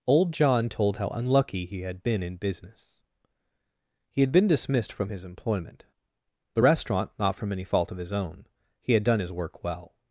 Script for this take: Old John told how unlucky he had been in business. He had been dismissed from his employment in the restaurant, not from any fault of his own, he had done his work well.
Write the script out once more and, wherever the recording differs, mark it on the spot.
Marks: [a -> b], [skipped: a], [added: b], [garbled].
Old John told how unlucky he had been in business. He had been dismissed from his employment [skipped: in] the restaurant, not from any fault of his own, he had done his work well.